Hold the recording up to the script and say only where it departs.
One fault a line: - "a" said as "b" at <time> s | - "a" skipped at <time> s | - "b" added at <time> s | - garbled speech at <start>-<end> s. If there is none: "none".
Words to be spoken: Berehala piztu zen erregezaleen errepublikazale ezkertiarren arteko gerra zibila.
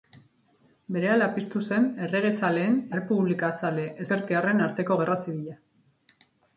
none